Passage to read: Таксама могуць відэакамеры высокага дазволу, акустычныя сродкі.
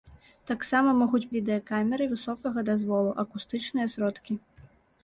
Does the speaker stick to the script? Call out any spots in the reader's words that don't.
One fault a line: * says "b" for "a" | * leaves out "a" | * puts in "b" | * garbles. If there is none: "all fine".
all fine